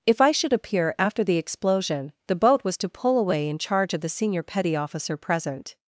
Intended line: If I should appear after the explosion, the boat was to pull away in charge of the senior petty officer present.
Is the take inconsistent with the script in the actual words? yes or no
no